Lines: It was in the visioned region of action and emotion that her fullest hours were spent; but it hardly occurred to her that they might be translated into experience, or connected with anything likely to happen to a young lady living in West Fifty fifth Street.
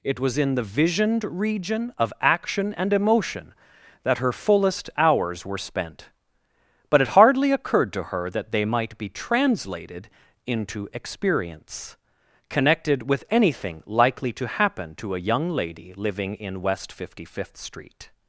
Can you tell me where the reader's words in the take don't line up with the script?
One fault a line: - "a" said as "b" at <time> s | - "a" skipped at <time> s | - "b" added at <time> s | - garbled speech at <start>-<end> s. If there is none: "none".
- "or" skipped at 12.0 s